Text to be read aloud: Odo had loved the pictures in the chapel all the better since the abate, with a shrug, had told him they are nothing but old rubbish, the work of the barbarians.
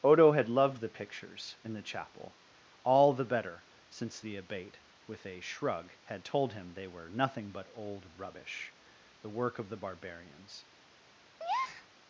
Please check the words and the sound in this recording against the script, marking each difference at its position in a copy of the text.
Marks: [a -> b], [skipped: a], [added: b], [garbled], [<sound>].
Odo had loved the pictures in the chapel all the better since the abate, with a shrug, had told him they [are -> were] nothing but old rubbish, the work of the barbarians. [breath]